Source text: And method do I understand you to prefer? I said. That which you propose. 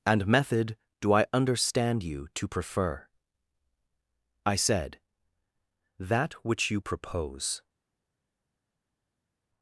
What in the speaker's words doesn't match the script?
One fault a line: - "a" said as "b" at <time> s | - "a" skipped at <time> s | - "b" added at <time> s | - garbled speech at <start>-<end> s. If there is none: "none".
none